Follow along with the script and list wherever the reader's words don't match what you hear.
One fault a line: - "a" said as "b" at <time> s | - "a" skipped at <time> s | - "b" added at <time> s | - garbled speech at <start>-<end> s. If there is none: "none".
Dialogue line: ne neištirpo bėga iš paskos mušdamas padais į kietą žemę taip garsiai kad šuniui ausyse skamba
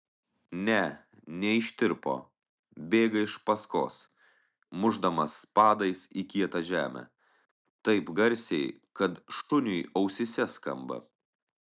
none